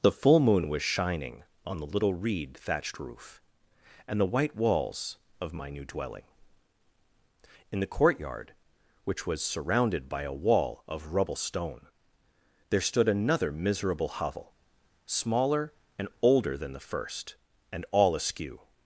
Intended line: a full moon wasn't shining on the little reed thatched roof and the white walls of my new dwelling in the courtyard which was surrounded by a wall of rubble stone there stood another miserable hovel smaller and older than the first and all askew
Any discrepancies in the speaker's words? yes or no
yes